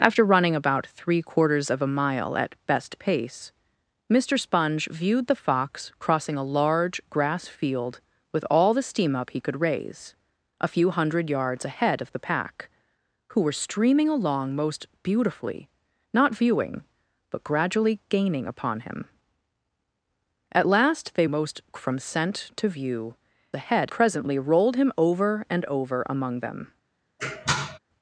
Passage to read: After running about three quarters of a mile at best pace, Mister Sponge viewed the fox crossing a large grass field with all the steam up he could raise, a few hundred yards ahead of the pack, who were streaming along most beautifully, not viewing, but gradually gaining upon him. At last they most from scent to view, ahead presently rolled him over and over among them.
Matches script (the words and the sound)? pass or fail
fail